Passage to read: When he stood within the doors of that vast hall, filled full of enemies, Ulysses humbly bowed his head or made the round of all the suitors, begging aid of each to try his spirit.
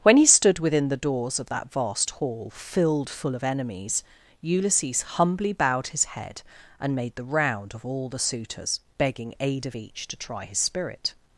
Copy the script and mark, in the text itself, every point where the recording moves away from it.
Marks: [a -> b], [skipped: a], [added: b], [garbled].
When he stood within the doors of that vast hall, filled full of enemies, Ulysses humbly bowed his head [or -> and] made the round of all the suitors, begging aid of each to try his spirit.